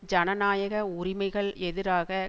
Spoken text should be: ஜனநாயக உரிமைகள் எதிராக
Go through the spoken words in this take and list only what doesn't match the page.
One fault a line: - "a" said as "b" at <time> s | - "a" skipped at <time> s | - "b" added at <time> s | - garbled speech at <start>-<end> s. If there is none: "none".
none